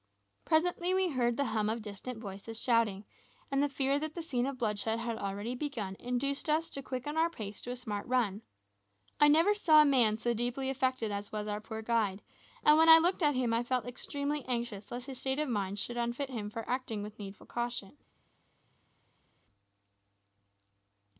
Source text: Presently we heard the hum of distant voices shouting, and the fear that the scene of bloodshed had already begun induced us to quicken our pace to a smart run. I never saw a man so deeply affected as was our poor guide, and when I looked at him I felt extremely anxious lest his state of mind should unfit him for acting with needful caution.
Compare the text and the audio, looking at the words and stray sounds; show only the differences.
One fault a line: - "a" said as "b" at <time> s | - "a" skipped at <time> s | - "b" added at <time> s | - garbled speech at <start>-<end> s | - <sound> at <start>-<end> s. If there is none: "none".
none